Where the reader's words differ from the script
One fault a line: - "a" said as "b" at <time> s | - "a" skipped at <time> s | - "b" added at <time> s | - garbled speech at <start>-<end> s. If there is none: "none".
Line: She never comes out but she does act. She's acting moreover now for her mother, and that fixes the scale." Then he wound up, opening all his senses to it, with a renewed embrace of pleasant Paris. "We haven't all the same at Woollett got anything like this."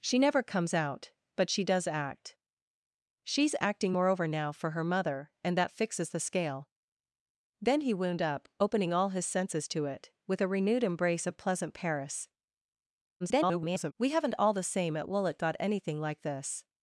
- garbled speech at 13.2-13.9 s